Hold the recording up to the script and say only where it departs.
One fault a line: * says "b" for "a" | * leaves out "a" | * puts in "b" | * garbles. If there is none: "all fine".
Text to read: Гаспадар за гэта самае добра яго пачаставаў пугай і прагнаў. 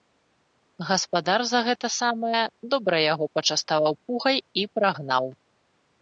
all fine